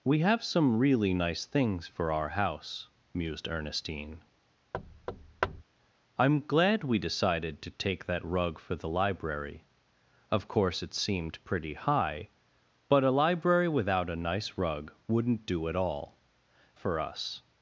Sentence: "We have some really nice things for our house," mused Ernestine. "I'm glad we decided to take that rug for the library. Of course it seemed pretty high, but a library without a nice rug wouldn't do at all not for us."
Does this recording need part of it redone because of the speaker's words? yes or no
yes